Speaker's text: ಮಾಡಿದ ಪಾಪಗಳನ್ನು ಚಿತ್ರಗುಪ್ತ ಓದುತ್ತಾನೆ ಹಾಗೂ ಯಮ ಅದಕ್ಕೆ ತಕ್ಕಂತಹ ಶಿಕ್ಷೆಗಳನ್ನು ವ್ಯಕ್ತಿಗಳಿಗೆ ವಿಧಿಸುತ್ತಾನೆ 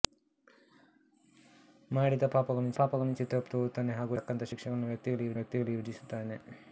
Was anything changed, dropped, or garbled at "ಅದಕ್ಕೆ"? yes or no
yes